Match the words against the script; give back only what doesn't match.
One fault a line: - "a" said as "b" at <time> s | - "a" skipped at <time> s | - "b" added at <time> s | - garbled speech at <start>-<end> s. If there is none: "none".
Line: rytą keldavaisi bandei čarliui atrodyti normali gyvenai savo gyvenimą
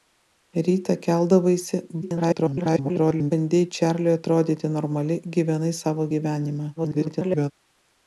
- garbled speech at 2.0-3.3 s
- garbled speech at 6.8-7.5 s